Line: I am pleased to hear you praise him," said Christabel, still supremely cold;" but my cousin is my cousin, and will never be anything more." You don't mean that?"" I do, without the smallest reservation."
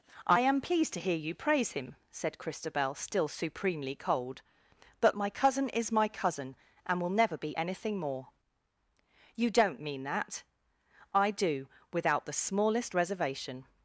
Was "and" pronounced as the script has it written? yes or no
yes